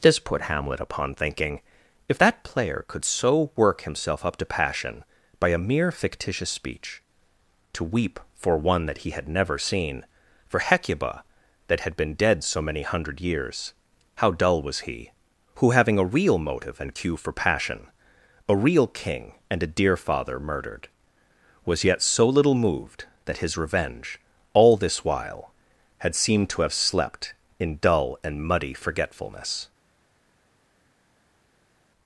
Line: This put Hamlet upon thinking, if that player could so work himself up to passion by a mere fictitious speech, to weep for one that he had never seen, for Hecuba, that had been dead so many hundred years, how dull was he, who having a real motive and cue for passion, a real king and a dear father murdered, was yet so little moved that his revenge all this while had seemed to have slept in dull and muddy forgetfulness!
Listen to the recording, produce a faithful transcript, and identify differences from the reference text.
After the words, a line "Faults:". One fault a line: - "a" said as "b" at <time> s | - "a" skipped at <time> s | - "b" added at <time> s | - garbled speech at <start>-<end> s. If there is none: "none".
This put Hamlet upon thinking, if that player could so work himself up to passion by a mere fictitious speech, to weep for one that he had never seen, for Hecuba, that had been dead so many hundred years, how dull was he, who having a real motive and cue for passion, a real king and a dear father murdered, was yet so little moved that his revenge all this while had seemed to have slept in dull and muddy forgetfulness!
Faults:
none